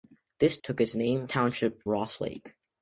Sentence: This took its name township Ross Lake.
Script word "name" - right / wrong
right